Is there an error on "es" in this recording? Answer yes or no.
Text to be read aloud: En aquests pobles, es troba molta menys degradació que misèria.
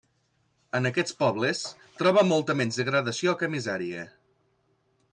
yes